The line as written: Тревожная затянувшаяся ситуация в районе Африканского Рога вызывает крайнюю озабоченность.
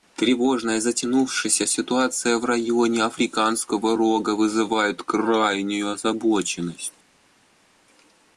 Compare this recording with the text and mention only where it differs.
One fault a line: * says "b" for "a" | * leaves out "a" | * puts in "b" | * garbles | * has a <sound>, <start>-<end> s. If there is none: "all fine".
all fine